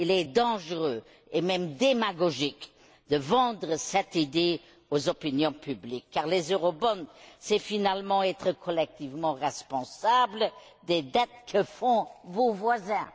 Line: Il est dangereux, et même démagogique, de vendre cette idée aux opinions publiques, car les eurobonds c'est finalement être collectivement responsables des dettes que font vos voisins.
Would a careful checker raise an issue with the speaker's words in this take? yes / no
no